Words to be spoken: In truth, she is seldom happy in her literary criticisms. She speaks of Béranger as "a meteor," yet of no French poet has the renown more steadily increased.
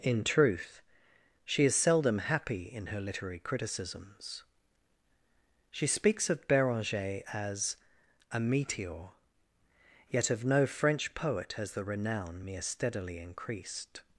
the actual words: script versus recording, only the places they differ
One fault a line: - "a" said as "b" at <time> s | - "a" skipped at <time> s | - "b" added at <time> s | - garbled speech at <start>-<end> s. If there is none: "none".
- "more" said as "mere" at 12.4 s